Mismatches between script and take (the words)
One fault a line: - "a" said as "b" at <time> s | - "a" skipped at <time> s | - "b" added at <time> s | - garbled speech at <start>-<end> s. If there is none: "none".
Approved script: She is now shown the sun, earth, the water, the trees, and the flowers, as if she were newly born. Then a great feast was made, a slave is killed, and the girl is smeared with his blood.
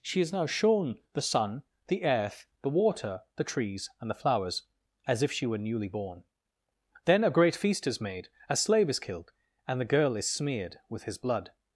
- "the" added at 1.9 s
- "was" said as "is" at 7.8 s